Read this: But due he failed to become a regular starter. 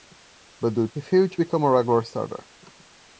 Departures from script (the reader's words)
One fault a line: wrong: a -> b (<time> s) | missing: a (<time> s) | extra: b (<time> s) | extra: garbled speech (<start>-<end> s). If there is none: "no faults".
no faults